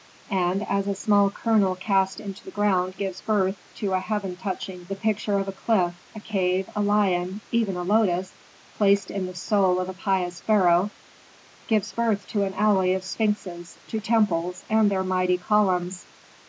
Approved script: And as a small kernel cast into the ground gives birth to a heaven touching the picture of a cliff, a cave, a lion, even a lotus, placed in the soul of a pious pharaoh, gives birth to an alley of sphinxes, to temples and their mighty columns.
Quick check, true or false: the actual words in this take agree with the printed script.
true